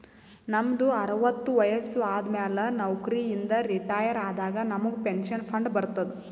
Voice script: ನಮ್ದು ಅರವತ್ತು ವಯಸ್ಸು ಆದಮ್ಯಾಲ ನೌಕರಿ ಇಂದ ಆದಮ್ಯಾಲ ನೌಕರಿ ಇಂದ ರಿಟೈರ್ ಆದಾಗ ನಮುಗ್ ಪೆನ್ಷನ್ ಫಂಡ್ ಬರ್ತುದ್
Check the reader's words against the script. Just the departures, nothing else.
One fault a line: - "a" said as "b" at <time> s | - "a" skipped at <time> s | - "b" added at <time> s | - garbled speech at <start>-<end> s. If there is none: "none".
- "ಆದಮ್ಯಾಲ ನೌಕರಿ ಇಂದ" skipped at 3.5 s